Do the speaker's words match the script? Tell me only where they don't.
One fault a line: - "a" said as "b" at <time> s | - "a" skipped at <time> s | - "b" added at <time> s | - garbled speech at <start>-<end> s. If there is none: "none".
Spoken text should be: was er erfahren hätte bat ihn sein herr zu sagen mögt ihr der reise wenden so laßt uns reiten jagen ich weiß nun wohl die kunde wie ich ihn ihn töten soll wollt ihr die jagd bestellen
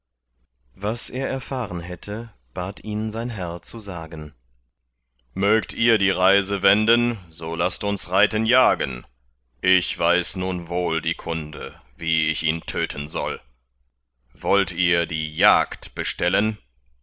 - "der" said as "die" at 6.0 s
- "ihn" skipped at 12.6 s